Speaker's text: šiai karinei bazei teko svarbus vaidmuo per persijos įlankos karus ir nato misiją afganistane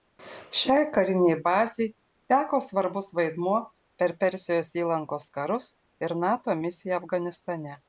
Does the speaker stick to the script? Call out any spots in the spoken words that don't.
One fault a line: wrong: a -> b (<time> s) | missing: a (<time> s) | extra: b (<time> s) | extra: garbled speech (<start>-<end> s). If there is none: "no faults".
no faults